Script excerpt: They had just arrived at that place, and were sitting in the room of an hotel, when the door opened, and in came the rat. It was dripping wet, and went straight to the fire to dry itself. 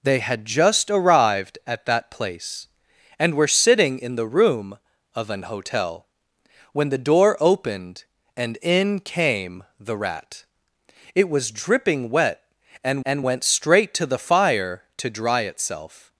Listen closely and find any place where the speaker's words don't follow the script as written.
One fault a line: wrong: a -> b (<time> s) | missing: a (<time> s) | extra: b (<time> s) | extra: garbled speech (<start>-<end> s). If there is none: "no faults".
extra: and (13.0 s)